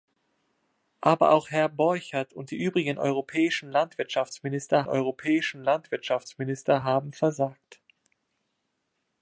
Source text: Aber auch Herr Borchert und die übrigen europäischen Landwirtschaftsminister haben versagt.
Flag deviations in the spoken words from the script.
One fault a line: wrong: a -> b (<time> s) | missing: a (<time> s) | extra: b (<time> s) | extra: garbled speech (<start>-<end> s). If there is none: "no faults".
extra: europäischen Landwirtschaftsminister (4.9 s)